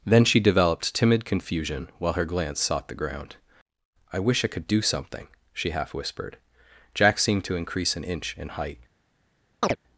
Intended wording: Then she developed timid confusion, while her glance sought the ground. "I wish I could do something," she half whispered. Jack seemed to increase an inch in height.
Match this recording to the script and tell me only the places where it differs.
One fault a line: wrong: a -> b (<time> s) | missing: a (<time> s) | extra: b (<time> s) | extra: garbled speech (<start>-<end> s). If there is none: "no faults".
no faults